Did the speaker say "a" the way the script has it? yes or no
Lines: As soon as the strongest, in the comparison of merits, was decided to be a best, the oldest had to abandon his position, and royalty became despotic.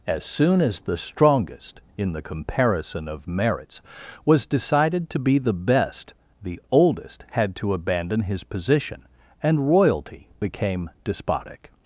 no